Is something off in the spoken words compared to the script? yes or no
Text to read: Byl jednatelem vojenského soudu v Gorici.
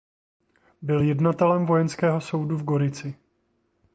no